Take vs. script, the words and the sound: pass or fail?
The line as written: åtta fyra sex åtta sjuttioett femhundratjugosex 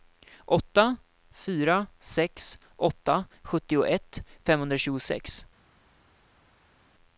pass